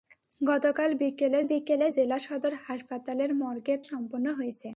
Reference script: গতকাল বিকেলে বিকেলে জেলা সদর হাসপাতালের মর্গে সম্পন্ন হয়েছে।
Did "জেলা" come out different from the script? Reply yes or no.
no